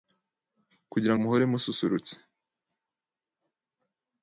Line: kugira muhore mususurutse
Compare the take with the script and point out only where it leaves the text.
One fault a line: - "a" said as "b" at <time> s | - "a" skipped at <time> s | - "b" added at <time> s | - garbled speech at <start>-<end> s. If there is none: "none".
none